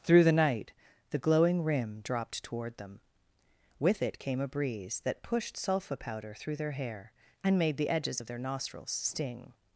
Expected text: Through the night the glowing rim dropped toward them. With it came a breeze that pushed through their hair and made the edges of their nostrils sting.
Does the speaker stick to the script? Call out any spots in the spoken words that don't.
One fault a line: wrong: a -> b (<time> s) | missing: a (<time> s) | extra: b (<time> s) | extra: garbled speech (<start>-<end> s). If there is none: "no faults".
extra: sulfa powder (5.5 s)